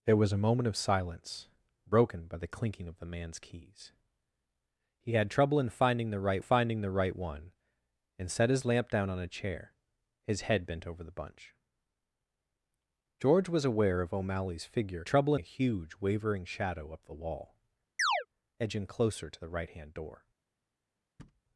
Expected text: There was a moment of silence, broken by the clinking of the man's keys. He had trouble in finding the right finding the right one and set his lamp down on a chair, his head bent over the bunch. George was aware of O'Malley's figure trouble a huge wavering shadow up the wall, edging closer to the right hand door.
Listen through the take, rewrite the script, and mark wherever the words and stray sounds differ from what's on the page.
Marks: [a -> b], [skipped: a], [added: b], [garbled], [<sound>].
There was a moment of silence, broken by the clinking of the man's keys. He had trouble in finding the right finding the right one and set his lamp down on a chair, his head bent over the bunch. George was aware of O'Malley's figure trouble a huge wavering shadow up the wall, [chirp] edging closer to the right hand door. [thud]